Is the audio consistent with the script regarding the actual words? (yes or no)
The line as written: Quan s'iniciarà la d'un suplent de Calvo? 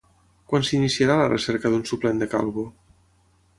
no